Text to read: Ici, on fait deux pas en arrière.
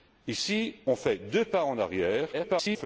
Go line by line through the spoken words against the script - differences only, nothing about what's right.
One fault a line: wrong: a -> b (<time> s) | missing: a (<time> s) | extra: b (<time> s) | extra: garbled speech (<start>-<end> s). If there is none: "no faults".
extra: garbled speech (2.3-2.9 s)